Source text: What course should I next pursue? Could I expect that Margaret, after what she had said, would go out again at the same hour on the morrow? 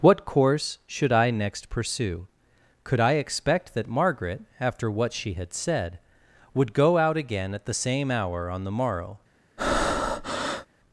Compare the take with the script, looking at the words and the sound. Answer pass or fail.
fail